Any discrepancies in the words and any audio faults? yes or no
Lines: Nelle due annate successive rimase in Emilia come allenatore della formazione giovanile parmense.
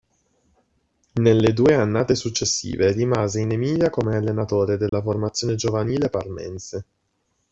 yes